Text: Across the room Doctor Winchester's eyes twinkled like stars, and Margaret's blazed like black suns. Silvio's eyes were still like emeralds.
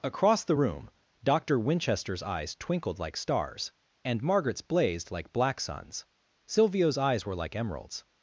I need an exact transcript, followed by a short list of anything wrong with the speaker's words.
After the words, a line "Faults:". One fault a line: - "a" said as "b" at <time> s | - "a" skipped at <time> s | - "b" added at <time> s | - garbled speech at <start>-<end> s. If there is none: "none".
Across the room Doctor Winchester's eyes twinkled like stars, and Margaret's blazed like black suns. Silvio's eyes were like emeralds.
Faults:
- "still" skipped at 7.3 s